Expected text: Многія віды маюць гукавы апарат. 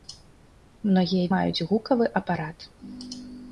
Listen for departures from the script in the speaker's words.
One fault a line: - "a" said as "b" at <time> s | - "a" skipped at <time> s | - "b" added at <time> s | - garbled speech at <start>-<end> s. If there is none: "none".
- "віды" skipped at 1.2 s